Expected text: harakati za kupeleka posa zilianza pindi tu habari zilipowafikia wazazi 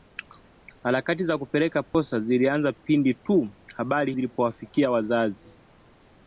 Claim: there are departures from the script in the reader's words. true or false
false